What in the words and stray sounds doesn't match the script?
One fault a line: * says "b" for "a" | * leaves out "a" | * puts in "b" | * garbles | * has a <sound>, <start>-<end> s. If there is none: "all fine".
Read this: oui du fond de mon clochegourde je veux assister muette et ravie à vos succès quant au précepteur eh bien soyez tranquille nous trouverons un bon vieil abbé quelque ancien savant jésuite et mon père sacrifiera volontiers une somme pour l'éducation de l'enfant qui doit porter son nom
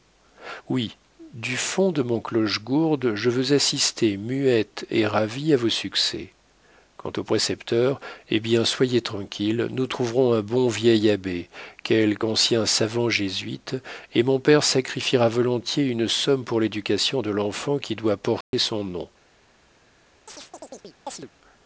* has a dropout, 18.4-18.5 s
* has a chirp, 20.3-21.3 s